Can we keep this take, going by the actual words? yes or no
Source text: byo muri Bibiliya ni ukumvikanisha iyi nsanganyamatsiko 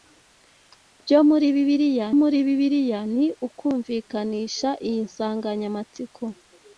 no